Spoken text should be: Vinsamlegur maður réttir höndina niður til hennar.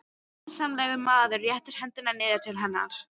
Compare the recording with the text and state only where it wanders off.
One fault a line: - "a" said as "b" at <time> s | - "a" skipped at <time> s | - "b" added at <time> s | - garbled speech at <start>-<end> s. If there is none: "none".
none